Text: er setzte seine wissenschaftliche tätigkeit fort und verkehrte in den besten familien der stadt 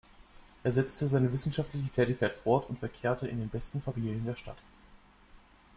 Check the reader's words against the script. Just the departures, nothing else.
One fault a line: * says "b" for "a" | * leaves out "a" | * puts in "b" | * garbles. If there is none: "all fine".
all fine